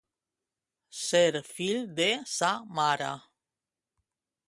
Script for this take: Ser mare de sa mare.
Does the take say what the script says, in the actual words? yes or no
no